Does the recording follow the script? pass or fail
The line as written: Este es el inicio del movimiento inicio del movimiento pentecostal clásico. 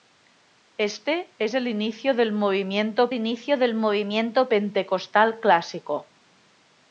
pass